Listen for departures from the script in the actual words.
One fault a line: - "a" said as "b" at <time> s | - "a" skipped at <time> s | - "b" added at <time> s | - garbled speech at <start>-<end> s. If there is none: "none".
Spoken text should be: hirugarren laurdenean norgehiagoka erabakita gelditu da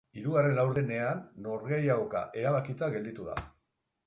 none